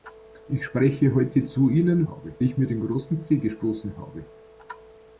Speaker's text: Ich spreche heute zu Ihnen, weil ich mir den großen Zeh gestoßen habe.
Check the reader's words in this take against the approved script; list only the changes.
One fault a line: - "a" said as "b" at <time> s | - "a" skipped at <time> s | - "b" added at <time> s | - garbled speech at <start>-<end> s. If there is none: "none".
- "weil" said as "habe" at 2.1 s